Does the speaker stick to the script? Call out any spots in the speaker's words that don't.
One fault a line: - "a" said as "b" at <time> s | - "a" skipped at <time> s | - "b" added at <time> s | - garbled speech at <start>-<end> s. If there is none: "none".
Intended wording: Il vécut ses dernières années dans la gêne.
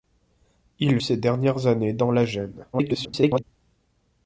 - "vécut" skipped at 1.0 s
- garbled speech at 2.7-3.4 s